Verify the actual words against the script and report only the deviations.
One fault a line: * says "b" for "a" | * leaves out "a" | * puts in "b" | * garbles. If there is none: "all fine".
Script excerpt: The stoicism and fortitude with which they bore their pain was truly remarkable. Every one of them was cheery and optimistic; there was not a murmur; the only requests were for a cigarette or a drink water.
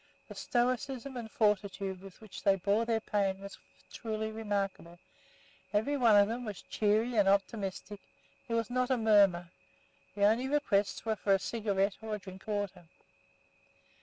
all fine